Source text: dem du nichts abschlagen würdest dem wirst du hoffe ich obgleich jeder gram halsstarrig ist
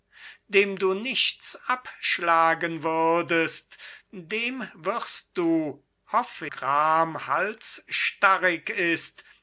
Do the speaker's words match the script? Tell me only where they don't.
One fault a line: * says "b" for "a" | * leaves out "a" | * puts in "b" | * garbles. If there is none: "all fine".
* leaves out "ich obgleich jeder"